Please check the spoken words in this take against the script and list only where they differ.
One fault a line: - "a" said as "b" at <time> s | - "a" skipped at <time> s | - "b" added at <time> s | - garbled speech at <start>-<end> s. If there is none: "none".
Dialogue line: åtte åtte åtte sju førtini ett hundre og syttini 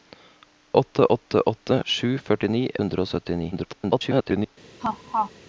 - "ett" skipped at 2.6 s
- garbled speech at 3.5-4.6 s